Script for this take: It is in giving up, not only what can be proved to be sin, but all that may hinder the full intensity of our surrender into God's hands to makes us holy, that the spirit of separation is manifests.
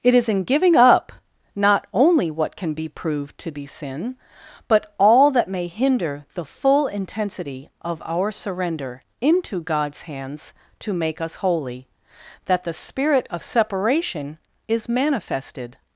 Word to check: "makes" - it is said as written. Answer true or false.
false